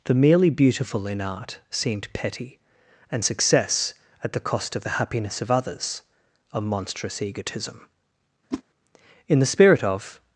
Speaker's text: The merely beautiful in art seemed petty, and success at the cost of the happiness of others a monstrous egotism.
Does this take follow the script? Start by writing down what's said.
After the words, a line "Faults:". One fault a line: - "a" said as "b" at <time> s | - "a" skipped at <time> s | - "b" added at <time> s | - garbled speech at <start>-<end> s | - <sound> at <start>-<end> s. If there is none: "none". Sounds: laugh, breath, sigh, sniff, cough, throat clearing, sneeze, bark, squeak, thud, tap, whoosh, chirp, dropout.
The merely beautiful in art seemed petty, and success at the cost of the happiness of others a monstrous egotism. In the spirit of
Faults:
- whoosh at 8.5-8.6 s
- "In the spirit of" added at 9.3 s